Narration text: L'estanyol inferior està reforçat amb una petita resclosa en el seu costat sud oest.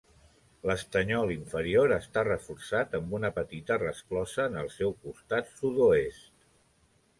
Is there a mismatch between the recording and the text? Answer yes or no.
no